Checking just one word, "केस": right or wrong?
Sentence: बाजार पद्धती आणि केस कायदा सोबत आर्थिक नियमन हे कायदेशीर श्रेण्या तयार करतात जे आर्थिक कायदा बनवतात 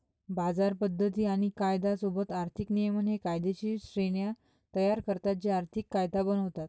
wrong